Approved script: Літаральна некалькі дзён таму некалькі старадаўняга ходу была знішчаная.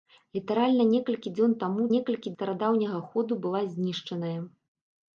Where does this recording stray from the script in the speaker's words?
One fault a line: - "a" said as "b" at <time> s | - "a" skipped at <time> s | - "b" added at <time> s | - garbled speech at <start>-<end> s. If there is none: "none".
none